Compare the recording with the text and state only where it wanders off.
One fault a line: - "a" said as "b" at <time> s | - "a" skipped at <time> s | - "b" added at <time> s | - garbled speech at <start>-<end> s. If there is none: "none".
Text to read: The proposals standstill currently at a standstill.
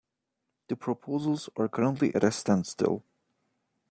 - "standstill" said as "are" at 1.6 s